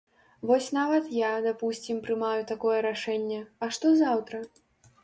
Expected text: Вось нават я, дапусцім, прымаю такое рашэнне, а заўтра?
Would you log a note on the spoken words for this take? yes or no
yes